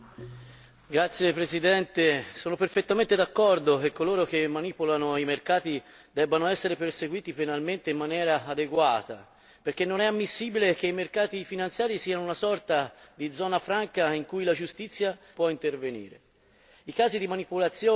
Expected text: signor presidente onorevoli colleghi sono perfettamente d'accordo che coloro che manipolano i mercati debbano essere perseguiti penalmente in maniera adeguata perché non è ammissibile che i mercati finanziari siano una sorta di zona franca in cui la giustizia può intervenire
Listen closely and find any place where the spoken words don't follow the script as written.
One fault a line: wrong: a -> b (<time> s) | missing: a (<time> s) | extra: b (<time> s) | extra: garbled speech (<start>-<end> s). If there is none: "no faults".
no faults